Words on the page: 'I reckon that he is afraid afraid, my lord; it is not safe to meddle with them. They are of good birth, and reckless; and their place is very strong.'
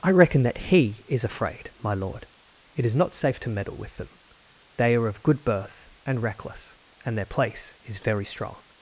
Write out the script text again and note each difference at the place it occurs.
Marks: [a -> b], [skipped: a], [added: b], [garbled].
'I reckon that he is afraid [skipped: afraid,] my lord; it is not safe to meddle with them. They are of good birth, and reckless; and their place is very strong.'